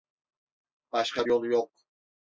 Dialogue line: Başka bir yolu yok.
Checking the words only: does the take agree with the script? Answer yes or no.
no